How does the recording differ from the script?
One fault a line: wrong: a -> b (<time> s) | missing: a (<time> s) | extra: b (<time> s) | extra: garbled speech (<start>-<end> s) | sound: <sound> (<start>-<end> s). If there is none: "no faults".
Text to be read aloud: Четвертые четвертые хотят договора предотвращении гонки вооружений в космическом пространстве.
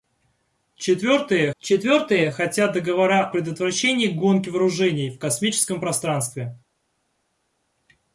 no faults